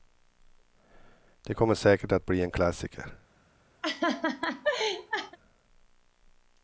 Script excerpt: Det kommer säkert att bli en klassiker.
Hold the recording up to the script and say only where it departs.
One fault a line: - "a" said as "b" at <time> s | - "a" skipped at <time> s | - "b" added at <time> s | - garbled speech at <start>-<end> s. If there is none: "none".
none